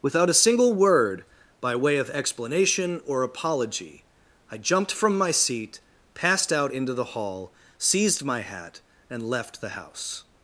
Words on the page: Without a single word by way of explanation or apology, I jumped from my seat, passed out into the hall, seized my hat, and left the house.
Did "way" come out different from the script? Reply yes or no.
no